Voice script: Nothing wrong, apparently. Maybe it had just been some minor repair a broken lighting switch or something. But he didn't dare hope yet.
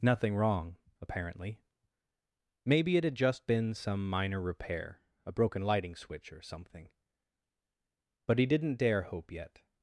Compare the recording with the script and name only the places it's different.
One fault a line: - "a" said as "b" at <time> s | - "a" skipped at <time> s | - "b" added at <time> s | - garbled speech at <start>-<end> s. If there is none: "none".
none